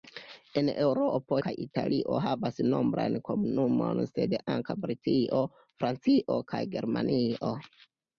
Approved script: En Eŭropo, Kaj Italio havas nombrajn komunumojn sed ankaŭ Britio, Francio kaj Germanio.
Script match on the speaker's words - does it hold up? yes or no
yes